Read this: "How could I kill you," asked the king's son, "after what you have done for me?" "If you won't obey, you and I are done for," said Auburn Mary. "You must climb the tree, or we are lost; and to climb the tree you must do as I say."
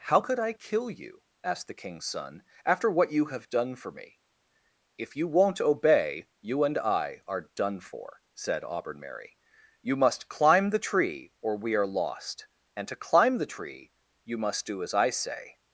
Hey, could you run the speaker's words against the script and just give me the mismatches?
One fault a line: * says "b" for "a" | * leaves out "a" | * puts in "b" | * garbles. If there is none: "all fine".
all fine